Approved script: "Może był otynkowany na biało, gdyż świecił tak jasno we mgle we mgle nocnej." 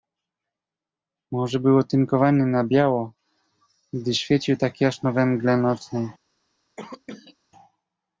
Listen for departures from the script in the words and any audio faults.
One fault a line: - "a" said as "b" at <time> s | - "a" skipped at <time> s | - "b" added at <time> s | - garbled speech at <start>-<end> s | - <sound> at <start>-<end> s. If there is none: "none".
- "we mgle" skipped at 5.6 s
- cough at 6.8-7.4 s